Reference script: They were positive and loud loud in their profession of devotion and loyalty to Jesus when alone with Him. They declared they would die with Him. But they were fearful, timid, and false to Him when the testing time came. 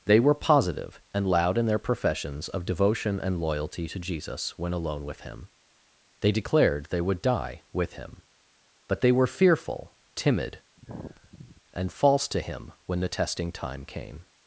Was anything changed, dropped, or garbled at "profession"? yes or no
yes